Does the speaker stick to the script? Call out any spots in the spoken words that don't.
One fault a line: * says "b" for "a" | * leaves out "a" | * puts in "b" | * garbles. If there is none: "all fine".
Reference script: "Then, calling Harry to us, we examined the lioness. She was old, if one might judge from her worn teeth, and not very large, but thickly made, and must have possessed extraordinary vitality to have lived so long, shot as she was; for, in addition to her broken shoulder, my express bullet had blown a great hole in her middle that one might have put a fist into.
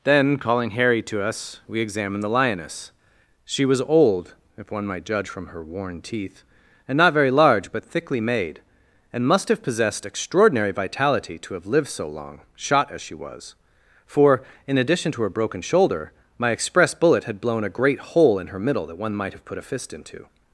all fine